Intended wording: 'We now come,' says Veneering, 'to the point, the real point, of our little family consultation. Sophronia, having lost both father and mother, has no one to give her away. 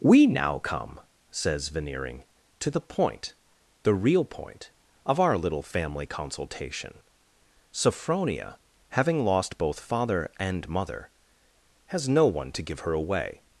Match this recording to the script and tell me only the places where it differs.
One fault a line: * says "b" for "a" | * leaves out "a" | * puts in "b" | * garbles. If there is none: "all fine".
all fine